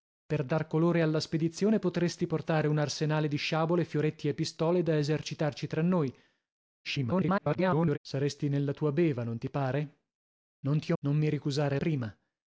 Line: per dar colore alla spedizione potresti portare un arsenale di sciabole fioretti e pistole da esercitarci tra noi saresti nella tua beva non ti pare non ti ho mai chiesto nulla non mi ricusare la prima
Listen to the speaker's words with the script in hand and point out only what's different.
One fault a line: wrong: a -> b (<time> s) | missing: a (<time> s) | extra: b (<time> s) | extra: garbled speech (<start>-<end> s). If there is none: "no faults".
extra: garbled speech (6.8-8.0 s)
missing: mai chiesto nulla (11.0 s)
missing: la (11.8 s)